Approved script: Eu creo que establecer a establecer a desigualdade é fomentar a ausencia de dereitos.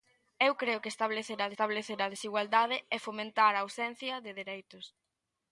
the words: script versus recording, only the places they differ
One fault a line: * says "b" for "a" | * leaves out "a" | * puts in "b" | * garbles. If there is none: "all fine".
all fine